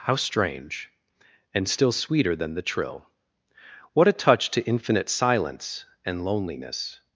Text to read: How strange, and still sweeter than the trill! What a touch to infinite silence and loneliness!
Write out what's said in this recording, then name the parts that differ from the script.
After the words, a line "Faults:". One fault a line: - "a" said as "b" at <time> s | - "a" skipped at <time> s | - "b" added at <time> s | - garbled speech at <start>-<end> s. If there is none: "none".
How strange, and still sweeter than the trill! What a touch to infinite silence and loneliness!
Faults:
none